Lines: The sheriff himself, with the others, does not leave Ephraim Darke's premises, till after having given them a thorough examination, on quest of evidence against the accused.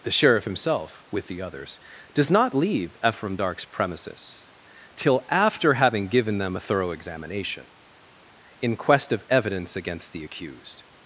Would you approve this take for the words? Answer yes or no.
no